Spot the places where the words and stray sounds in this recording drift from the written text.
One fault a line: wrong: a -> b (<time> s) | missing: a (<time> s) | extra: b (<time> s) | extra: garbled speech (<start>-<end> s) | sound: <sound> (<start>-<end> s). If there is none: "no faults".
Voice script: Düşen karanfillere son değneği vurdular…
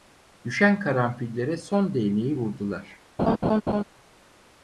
sound: laugh (3.2-3.8 s)